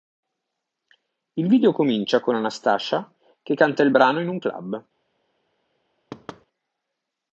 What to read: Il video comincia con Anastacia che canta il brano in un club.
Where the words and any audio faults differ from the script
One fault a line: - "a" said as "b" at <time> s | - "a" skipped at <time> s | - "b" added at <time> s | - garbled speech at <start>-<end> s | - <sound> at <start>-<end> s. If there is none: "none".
- thud at 6.1-6.5 s